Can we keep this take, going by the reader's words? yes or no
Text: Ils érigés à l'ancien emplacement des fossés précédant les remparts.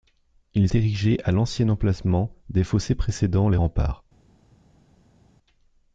yes